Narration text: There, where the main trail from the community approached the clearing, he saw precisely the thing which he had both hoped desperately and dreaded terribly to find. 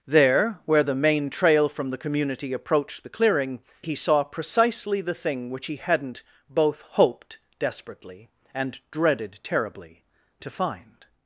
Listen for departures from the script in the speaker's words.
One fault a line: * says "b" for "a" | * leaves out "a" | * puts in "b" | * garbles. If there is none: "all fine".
* says "hadn't" for "had"